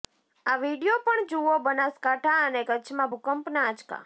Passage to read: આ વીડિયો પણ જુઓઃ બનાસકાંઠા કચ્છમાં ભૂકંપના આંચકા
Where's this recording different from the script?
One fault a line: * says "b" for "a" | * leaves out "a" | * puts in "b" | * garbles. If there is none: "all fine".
* puts in "અને"